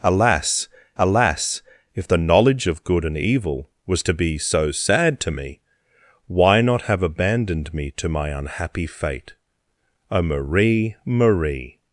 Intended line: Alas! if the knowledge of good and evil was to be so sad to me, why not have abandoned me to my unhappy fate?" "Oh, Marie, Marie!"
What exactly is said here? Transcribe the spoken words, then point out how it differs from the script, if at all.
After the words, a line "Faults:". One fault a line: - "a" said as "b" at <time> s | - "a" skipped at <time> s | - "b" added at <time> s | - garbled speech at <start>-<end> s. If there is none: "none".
Alas alas! if the knowledge of good and evil was to be so sad to me, why not have abandoned me to my unhappy fate?" "Oh, Marie, Marie!"
Faults:
- "alas" added at 1.0 s